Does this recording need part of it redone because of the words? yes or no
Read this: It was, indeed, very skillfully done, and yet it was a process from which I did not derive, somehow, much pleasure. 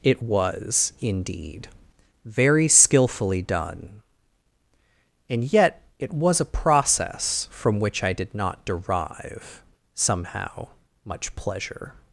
no